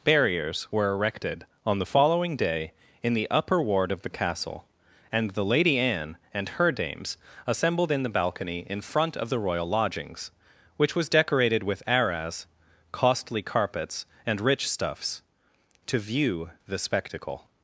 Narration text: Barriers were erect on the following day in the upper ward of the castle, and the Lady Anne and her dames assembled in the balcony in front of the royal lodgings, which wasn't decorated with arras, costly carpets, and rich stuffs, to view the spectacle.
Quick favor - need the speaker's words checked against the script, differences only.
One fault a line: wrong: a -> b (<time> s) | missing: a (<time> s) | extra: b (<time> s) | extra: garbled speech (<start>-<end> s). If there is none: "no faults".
wrong: erect -> erected (0.9 s)
wrong: wasn't -> was (11.0 s)